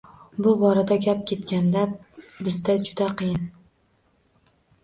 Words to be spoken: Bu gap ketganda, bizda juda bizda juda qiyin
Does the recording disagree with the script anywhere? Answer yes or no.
yes